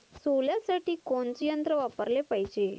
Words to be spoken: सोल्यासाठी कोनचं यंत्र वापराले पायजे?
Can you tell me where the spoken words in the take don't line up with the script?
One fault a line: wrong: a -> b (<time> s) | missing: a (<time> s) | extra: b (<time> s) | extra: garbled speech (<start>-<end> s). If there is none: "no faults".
no faults